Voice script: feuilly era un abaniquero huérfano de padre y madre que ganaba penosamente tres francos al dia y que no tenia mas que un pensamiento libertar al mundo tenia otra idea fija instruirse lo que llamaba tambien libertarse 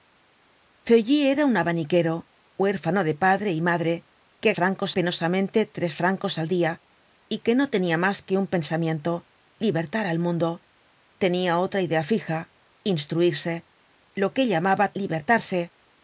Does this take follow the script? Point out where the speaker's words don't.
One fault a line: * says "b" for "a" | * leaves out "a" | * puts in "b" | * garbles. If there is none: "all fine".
* says "francos" for "ganaba"
* leaves out "tambien"